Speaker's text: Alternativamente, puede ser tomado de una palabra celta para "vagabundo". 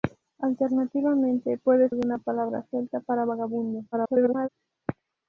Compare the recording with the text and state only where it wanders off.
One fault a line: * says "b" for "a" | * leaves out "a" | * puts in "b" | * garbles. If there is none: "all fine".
* leaves out "ser tomado"
* garbles